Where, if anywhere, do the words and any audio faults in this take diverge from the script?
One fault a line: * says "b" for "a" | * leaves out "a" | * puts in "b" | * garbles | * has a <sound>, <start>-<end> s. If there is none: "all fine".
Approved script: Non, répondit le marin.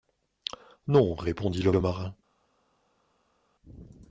* puts in "le"